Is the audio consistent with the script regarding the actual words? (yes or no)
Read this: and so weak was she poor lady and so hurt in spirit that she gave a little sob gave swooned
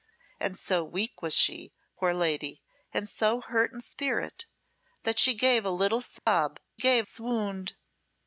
yes